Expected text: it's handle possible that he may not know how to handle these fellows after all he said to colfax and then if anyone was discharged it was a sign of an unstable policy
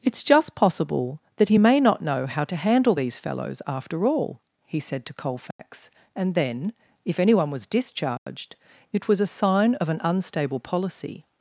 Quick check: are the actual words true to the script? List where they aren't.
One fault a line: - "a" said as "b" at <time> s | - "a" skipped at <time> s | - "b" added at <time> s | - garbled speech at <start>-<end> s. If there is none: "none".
- "handle" said as "just" at 0.2 s